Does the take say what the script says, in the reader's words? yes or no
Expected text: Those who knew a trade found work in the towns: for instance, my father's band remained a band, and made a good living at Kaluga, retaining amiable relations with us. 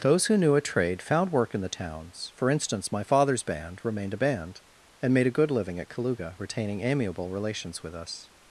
yes